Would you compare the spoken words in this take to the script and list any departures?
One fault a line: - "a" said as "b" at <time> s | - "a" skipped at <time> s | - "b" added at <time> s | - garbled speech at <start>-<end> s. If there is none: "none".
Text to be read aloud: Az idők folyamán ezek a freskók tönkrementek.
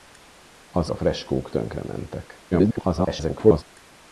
- "idők folyamán ezek" skipped at 0.9 s
- garbled speech at 2.5-3.6 s